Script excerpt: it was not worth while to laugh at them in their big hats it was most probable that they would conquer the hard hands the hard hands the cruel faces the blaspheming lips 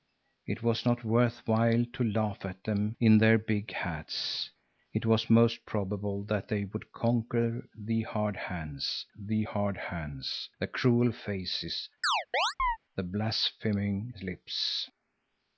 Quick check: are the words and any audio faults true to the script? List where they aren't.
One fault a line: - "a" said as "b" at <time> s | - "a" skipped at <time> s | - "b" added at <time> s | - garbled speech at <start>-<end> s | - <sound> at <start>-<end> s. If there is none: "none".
- chirp at 12.0-12.8 s